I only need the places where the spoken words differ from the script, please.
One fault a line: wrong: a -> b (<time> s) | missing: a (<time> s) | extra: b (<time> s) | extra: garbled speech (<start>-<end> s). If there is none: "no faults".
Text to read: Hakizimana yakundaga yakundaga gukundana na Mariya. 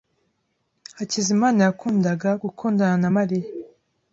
missing: yakundaga (2.3 s)